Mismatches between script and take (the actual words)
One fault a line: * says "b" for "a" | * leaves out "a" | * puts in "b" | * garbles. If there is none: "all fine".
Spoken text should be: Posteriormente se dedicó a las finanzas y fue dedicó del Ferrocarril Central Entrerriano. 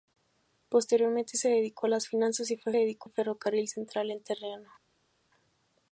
all fine